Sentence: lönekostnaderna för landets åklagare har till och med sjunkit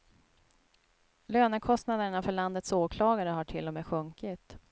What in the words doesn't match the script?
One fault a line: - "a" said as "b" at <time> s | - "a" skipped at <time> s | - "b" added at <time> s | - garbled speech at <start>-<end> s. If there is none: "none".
none